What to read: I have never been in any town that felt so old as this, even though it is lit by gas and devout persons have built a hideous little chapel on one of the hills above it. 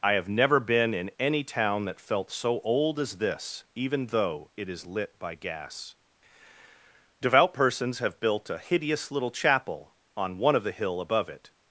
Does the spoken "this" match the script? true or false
true